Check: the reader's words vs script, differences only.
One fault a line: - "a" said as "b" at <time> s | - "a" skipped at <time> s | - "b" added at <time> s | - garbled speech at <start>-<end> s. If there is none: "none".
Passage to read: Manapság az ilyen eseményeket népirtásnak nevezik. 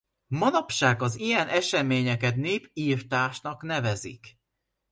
none